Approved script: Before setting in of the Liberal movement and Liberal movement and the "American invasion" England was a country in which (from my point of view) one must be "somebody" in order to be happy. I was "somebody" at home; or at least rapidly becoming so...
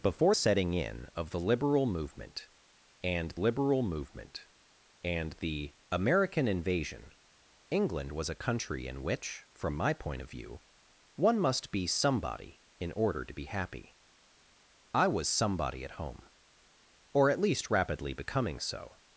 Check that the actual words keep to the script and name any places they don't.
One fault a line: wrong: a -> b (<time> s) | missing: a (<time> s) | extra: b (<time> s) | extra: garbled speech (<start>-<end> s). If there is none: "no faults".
no faults